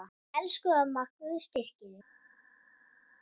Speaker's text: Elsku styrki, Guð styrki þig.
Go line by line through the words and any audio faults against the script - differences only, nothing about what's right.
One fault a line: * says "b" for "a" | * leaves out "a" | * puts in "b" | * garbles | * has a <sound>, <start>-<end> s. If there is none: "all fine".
* says "amma" for "styrki"